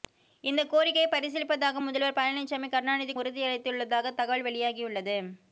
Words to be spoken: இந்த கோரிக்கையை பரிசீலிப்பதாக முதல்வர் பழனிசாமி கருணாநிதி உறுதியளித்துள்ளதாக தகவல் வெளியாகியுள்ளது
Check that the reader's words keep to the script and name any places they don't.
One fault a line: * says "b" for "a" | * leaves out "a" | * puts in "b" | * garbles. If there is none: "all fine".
all fine